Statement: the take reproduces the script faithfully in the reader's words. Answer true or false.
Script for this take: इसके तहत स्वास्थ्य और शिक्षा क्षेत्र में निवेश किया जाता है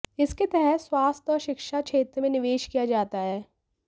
true